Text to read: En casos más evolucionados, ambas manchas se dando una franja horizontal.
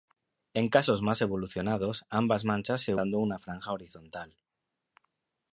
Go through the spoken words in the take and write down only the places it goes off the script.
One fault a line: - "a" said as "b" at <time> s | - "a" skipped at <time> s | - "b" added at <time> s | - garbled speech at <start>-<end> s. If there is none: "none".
none